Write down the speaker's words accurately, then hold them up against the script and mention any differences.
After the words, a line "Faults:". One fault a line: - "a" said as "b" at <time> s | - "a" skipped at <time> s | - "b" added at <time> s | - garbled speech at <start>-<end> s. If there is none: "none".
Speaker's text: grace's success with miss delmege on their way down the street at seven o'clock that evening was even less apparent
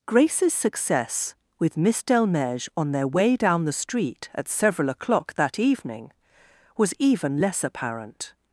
grace's success with miss delmege on their way down the street at several o'clock that evening was even less apparent
Faults:
- "seven" said as "several" at 4.5 s